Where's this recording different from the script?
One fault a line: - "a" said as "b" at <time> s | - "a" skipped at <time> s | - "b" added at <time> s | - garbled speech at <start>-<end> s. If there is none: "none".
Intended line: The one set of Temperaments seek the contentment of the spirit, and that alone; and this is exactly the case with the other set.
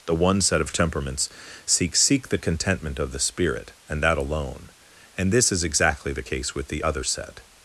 - "seek" added at 1.9 s